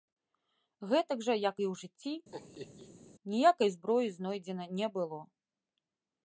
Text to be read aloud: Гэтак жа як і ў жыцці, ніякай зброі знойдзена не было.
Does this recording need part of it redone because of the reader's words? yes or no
no